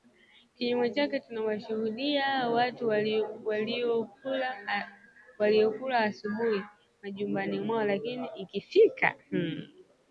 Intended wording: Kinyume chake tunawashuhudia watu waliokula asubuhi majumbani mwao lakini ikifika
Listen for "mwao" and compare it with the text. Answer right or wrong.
right